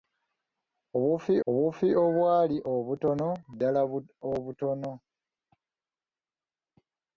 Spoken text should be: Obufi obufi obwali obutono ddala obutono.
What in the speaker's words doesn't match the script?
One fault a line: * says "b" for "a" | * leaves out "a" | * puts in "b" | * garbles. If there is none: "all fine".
all fine